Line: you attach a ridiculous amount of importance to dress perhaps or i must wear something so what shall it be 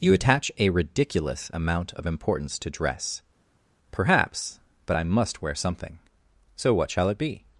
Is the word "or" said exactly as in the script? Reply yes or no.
no